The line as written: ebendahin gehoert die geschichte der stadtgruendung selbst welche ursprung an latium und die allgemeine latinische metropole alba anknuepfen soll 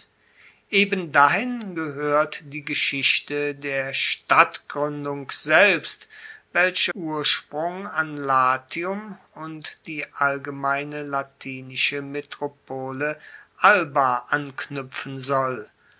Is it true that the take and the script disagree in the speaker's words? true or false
false